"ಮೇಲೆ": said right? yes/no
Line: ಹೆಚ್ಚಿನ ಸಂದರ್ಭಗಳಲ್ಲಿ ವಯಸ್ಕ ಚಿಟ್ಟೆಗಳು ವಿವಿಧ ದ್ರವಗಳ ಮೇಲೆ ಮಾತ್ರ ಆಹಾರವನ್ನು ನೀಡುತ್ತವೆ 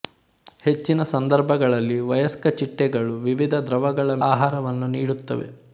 no